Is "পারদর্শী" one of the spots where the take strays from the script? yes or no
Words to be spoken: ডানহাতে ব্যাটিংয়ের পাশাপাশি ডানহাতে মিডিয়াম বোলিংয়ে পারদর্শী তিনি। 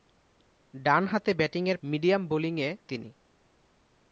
yes